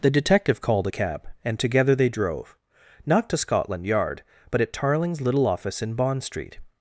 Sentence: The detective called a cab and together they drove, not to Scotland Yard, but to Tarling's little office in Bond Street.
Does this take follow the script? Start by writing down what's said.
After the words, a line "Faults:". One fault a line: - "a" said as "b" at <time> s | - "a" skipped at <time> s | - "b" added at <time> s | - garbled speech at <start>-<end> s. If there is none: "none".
The detective called a cab and together they drove, not to Scotland Yard, but at Tarling's little office in Bond Street.
Faults:
- "to" said as "at" at 4.6 s